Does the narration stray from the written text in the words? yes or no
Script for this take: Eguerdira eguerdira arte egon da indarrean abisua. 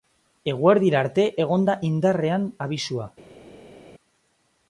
yes